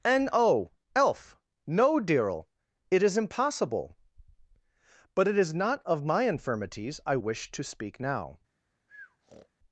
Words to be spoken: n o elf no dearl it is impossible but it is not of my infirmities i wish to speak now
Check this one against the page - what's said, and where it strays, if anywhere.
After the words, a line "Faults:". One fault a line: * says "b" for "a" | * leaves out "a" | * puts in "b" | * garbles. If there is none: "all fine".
n o elf no dearl it is impossible but it is not of my infirmities i wish to speak now
Faults:
all fine